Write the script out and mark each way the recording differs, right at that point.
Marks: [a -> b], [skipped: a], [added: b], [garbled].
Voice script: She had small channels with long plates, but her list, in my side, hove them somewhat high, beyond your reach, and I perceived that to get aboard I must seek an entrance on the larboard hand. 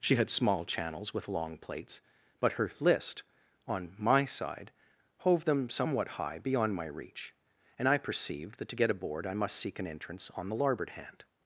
She had small channels with long plates, but her list, [in -> on] my side, hove them somewhat high, beyond [your -> my] reach, and I perceived that to get aboard I must seek an entrance on the larboard hand.